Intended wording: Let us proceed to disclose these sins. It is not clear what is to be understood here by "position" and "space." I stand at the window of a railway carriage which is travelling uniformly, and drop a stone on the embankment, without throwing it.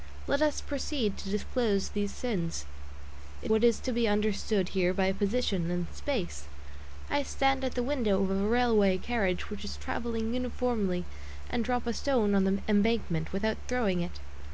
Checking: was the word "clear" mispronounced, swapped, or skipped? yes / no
yes